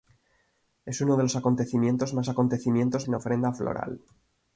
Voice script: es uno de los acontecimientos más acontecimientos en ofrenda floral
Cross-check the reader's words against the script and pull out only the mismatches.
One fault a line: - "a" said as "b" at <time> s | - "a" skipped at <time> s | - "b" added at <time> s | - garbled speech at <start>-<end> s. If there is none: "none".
none